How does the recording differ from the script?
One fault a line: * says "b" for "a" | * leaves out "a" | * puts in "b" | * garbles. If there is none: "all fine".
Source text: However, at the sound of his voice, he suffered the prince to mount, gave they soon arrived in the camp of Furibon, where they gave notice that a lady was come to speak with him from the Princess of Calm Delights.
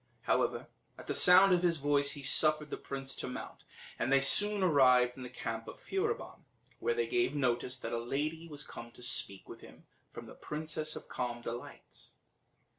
* says "and" for "gave"